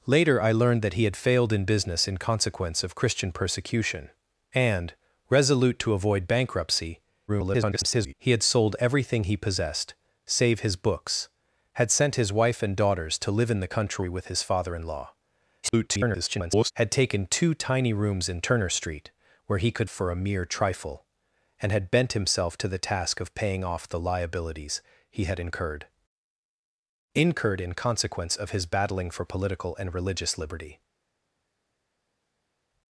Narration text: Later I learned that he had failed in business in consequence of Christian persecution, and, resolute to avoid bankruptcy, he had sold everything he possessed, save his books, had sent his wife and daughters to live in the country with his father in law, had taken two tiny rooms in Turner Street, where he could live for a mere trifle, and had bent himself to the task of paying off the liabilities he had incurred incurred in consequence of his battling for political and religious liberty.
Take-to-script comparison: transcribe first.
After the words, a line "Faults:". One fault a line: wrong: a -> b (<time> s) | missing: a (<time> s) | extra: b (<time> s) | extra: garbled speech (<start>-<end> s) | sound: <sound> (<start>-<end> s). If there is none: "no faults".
Later I learned that he had failed in business in consequence of Christian persecution, and, resolute to avoid bankruptcy, [garbled] he had sold everything he possessed, save his books, had sent his wife and daughters to live in the country with his father in law, [garbled] had taken two tiny rooms in Turner Street, where he could for a mere trifle, and had bent himself to the task of paying off the liabilities he had incurred incurred in consequence of his battling for political and religious liberty.
Faults:
extra: garbled speech (7.3-8.1 s)
extra: garbled speech (15.6-16.7 s)
missing: live (19.9 s)